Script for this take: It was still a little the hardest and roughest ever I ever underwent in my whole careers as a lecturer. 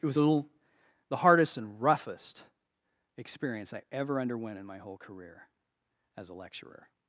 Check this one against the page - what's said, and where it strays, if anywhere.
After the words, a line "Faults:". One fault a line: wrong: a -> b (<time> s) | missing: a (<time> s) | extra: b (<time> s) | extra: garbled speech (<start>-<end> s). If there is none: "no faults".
It was a little the hardest and roughest experience I ever underwent in my whole career as a lecturer.
Faults:
missing: still (0.2 s)
wrong: ever -> experience (3.2 s)
wrong: careers -> career (5.0 s)